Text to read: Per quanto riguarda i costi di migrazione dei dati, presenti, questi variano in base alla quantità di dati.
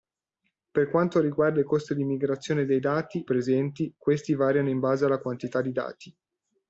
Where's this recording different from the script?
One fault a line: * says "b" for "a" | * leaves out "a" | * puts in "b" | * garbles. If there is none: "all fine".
all fine